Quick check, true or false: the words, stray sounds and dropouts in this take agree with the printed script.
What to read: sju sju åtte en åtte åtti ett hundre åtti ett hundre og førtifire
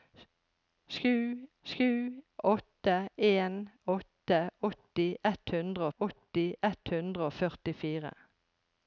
true